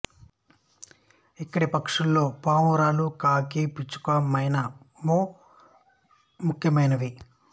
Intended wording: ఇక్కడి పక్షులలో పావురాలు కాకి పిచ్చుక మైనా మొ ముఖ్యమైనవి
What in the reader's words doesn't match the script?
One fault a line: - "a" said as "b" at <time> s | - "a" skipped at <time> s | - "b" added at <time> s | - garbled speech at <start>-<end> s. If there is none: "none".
none